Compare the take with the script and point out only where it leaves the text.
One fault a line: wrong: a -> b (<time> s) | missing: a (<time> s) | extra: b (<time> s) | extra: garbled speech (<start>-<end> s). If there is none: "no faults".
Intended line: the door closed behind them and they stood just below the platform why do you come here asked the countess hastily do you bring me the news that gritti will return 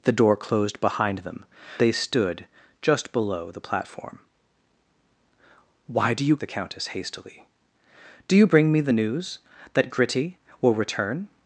missing: and (1.4 s)
missing: come here asked (6.4 s)